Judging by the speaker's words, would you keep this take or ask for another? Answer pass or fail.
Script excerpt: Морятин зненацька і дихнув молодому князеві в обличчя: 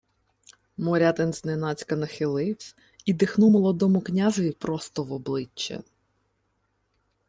fail